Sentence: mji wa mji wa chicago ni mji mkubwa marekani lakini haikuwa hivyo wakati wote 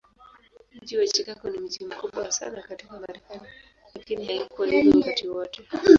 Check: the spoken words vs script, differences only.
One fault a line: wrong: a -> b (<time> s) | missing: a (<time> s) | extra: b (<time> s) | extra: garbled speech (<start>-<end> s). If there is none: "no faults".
missing: mji wa (1.1 s)
extra: sana katika (2.3 s)